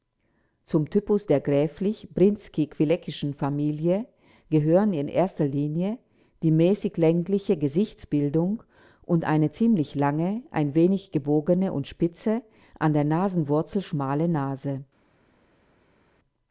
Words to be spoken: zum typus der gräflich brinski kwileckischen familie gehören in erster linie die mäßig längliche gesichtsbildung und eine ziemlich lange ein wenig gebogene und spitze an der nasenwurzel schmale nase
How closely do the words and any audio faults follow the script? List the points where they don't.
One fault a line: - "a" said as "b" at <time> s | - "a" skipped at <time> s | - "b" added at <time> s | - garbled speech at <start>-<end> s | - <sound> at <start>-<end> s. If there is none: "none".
none